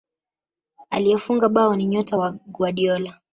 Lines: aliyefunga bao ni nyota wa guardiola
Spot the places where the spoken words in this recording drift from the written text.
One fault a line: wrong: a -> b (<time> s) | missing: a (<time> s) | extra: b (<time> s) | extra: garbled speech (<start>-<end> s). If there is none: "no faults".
no faults